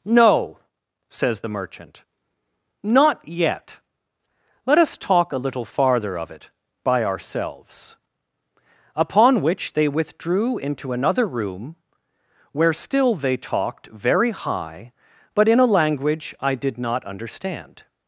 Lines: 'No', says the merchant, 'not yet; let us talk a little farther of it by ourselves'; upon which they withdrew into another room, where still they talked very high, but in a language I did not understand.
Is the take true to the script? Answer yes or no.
yes